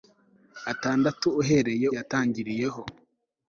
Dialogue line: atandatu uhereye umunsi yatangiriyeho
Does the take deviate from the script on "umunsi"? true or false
true